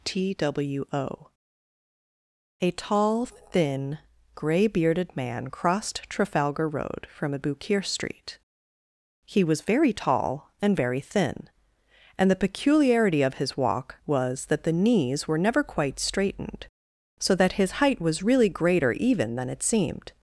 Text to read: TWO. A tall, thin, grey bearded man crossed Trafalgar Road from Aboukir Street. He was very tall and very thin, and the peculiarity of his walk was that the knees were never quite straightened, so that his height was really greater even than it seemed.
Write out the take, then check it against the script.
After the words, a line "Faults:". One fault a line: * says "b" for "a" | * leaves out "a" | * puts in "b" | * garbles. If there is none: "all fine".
TWO. A tall, thin, grey bearded man crossed Trafalgar Road from Aboukir Street. He was very tall and very thin, and the peculiarity of his walk was that the knees were never quite straightened, so that his height was really greater even than it seemed.
Faults:
all fine